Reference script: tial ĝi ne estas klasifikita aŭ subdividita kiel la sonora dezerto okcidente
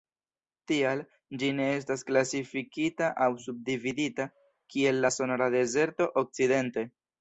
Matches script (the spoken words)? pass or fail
pass